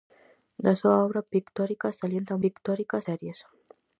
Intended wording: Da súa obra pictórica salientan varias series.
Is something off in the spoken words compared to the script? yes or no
yes